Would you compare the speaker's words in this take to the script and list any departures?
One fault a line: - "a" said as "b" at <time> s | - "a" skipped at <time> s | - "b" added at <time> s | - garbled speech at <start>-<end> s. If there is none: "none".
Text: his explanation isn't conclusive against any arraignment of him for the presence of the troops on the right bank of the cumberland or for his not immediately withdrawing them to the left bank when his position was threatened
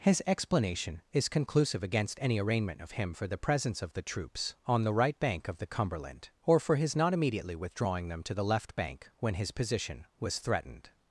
- "isn't" said as "is" at 1.1 s